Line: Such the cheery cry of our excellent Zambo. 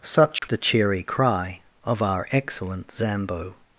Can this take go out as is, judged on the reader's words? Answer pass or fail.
pass